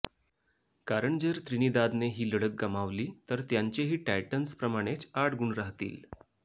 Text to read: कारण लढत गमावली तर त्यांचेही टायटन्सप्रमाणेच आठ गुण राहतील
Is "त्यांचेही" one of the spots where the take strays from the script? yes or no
no